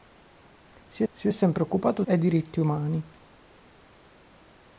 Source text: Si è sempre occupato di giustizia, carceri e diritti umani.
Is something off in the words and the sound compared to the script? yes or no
yes